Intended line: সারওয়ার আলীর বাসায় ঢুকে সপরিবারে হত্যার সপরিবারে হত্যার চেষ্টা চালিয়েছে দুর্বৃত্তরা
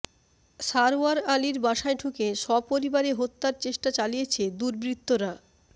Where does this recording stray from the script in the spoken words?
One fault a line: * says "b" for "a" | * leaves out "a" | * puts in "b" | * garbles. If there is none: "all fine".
* leaves out "সপরিবারে হত্যার"